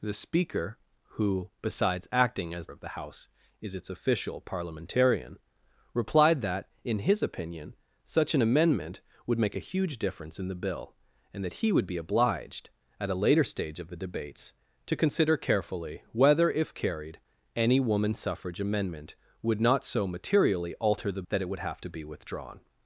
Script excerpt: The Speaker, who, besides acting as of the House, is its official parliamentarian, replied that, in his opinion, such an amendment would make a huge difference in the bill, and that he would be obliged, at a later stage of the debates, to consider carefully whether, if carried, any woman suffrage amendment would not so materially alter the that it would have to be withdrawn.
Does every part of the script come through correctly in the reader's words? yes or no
yes